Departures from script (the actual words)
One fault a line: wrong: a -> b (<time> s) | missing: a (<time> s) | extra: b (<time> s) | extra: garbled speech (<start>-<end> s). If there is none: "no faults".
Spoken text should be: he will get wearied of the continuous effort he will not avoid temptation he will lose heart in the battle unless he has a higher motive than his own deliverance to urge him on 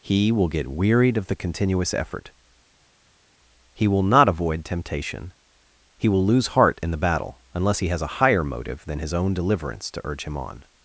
no faults